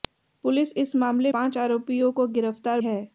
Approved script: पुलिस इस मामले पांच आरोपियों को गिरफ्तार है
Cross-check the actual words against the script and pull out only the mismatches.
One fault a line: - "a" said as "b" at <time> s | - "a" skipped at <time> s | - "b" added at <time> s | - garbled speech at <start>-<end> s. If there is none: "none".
none